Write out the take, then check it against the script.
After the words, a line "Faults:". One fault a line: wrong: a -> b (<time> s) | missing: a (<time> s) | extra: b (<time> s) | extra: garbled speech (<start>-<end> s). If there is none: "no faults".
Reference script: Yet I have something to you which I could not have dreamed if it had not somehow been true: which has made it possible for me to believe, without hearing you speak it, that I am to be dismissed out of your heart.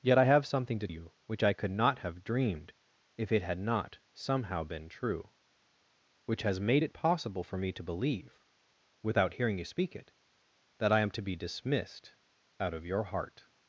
Yet I have something to you which I could not have dreamed if it had not somehow been true: which has made it possible for me to believe, without hearing you speak it, that I am to be dismissed out of your heart.
Faults:
no faults